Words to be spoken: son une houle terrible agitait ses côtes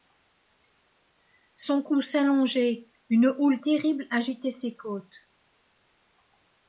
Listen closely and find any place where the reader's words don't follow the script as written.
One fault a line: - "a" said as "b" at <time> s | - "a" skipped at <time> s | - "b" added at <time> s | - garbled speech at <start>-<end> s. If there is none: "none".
- "cou s'allongeait" added at 1.8 s